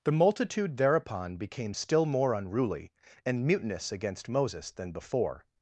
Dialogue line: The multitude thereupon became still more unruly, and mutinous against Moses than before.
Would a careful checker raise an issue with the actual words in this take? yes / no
no